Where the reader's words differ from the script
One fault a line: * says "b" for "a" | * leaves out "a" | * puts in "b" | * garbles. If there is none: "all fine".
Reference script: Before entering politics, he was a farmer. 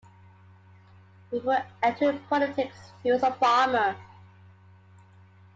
all fine